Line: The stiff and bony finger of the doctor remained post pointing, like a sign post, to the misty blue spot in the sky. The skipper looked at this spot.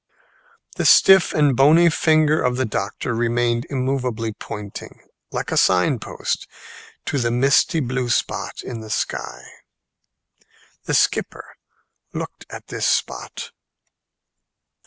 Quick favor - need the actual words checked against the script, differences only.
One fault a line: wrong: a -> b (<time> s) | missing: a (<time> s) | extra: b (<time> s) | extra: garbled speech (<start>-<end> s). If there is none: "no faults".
wrong: post -> immovably (3.7 s)